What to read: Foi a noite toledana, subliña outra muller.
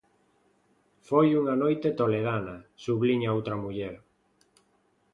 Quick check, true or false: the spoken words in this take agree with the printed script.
false